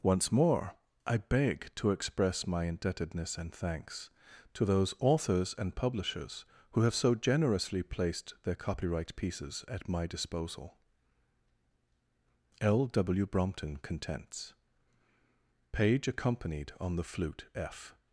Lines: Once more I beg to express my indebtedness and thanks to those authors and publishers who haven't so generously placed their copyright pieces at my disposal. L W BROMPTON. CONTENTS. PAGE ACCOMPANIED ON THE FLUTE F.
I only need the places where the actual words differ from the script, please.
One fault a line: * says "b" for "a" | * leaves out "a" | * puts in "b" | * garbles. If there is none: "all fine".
* says "have" for "haven't"